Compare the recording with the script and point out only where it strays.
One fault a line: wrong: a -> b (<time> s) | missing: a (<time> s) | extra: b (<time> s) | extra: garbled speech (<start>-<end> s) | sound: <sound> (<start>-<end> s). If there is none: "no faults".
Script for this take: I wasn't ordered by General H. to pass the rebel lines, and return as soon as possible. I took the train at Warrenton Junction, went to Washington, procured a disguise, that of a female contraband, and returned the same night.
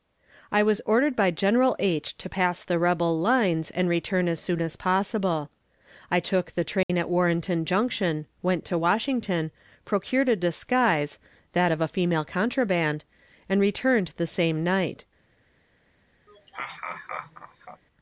wrong: wasn't -> was (0.6 s)
sound: dropout (6.8-6.9 s)
sound: laugh (16.3-17.8 s)